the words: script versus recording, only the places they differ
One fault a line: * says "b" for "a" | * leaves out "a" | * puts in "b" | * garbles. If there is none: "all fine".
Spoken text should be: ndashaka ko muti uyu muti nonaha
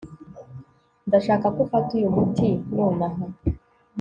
* says "ufata" for "muti"